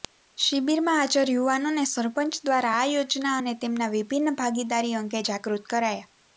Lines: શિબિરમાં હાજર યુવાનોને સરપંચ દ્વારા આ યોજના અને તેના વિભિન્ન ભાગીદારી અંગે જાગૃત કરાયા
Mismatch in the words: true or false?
false